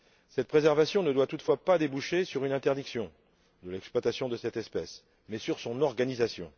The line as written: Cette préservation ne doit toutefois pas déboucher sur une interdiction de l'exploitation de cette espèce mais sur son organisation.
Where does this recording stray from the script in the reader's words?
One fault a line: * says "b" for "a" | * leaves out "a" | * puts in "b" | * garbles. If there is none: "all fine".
all fine